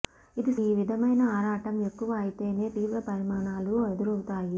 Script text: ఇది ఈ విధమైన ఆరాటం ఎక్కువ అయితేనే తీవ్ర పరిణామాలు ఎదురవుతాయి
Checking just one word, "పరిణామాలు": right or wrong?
right